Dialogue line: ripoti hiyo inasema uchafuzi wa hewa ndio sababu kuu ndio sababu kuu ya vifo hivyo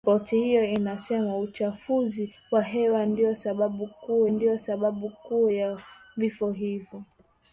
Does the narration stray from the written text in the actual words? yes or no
no